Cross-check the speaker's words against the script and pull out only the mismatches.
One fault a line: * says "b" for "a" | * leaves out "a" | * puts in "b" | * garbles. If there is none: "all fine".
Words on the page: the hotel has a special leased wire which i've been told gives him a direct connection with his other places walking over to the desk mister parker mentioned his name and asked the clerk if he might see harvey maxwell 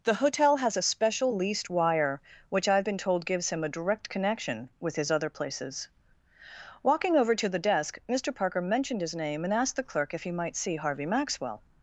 all fine